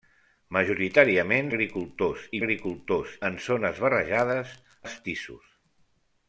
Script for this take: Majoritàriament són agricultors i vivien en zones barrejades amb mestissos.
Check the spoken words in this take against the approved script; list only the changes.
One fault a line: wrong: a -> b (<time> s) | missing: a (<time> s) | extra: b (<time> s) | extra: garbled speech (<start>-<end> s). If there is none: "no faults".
missing: són (1.5 s)
wrong: vivien -> agricultors (2.4 s)
missing: amb (4.6 s)